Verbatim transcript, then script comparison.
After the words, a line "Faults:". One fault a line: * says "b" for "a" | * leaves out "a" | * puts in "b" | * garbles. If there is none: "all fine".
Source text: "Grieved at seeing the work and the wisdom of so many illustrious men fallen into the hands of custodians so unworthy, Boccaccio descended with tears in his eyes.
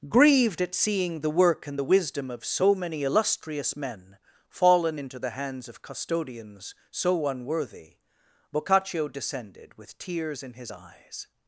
"Grieved at seeing the work and the wisdom of so many illustrious men fallen into the hands of custodians so unworthy, Boccaccio descended with tears in his eyes.
Faults:
all fine